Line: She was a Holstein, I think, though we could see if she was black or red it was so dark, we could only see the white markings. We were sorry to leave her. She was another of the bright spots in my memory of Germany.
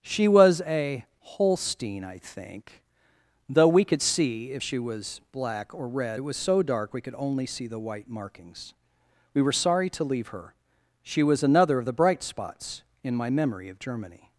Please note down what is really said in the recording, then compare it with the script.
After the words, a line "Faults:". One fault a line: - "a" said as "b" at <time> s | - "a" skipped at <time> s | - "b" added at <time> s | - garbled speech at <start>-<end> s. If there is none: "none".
She was a Holstein, I think, though we could see if she was black or red it was so dark, we could only see the white markings. We were sorry to leave her. She was another of the bright spots in my memory of Germany.
Faults:
none